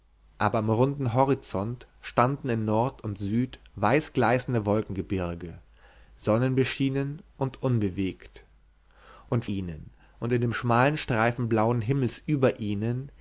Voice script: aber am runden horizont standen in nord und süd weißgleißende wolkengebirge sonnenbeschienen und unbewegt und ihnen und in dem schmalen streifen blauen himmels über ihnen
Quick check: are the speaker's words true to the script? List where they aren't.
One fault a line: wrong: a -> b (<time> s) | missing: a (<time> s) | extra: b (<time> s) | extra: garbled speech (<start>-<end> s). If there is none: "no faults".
no faults